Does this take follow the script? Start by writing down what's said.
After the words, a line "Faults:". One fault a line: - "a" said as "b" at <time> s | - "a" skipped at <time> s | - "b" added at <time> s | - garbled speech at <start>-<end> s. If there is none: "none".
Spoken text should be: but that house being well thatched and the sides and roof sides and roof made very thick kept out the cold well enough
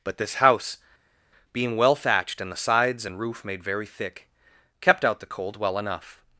but this house being well thatched and the sides and roof made very thick kept out the cold well enough
Faults:
- "that" said as "this" at 0.2 s
- "sides and roof" skipped at 3.4 s